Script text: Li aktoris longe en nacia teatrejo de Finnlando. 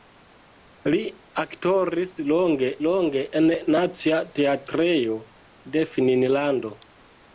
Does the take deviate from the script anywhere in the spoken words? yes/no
yes